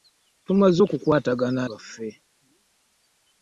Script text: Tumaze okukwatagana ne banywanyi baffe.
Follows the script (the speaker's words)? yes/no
no